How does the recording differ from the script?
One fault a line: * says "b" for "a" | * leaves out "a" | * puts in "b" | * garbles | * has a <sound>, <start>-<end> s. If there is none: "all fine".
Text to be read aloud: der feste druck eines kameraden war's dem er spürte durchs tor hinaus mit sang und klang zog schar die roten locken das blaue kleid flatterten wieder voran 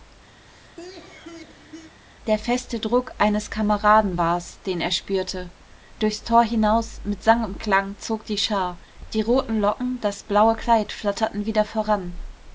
* has a cough, 0.4-1.9 s
* says "den" for "dem"
* puts in "die"